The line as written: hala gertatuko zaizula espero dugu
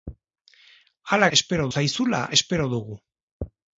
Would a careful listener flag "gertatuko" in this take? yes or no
yes